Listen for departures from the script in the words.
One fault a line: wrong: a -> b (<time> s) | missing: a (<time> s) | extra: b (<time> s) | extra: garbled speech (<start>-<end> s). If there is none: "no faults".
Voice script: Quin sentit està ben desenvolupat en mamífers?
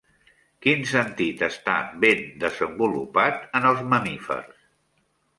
extra: els (3.7 s)